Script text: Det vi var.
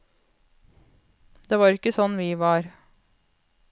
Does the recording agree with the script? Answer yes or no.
no